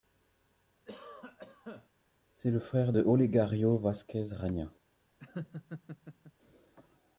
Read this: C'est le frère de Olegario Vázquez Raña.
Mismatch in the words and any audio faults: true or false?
true